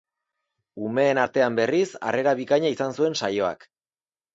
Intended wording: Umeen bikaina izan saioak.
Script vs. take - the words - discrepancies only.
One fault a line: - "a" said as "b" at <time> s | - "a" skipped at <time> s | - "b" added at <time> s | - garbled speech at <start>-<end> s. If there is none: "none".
- "artean berriz harrera" added at 1.2 s
- "zuen" added at 3.0 s